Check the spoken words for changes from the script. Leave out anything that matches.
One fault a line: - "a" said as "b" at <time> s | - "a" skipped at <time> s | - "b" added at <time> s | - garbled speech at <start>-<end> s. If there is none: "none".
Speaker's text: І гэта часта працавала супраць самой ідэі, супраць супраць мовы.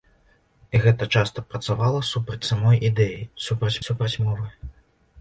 none